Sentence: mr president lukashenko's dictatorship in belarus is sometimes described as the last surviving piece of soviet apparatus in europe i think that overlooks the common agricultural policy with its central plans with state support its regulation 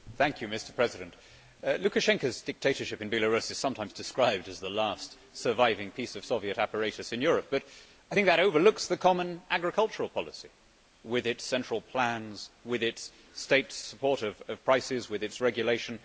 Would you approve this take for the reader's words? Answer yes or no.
no